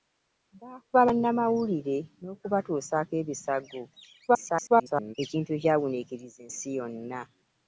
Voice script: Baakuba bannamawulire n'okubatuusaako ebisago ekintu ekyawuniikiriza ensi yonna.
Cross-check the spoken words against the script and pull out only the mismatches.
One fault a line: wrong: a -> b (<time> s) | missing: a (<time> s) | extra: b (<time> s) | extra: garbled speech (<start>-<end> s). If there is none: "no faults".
extra: garbled speech (4.3-5.1 s)